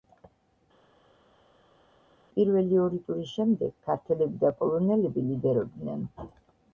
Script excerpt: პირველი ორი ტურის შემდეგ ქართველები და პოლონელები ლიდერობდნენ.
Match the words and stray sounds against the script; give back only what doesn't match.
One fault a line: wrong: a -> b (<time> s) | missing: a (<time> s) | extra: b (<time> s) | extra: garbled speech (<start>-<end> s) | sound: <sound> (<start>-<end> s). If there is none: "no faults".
no faults